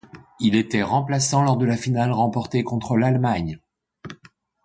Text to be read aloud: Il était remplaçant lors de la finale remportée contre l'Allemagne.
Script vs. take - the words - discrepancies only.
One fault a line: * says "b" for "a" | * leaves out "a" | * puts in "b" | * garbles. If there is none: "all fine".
all fine